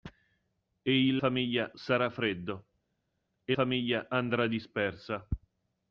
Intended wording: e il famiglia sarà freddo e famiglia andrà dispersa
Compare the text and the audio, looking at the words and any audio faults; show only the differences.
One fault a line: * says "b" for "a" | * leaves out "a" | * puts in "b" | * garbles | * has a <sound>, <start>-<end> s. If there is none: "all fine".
all fine